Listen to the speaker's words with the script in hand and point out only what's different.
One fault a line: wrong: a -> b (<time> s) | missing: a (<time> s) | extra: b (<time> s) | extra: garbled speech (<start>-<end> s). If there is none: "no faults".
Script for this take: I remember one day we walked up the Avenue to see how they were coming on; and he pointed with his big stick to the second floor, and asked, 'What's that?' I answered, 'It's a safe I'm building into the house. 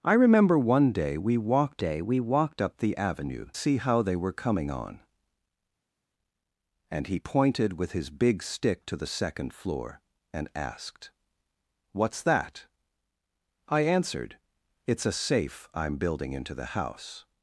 extra: day we walked (1.8 s)
missing: to (3.5 s)